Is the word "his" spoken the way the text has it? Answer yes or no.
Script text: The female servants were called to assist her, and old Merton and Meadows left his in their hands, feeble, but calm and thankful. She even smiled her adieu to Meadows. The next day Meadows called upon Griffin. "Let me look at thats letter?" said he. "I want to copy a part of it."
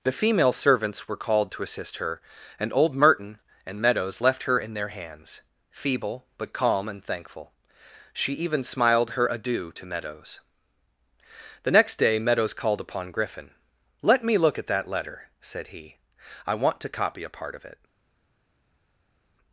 no